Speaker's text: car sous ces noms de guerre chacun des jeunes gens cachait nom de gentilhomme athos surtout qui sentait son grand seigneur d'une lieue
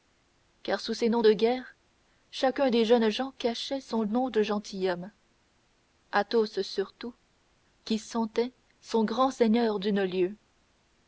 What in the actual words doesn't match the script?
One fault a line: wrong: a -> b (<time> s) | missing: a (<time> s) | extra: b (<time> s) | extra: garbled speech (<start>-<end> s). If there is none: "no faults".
extra: son (3.8 s)